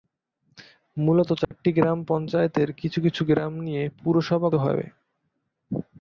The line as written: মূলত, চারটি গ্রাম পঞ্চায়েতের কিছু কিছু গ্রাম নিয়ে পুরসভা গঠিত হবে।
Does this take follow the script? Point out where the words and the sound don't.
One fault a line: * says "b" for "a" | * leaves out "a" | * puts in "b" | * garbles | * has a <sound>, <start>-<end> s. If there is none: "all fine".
* has a dropout, 1.4-1.5 s
* leaves out "গঠিত"